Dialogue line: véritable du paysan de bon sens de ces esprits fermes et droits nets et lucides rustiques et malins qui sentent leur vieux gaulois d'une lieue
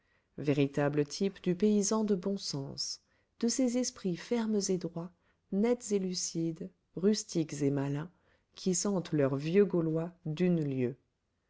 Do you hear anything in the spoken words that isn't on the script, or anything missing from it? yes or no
yes